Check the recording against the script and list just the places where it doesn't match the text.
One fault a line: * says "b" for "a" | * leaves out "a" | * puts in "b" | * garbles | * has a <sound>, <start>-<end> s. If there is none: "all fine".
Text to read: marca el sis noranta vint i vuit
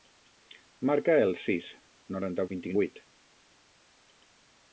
all fine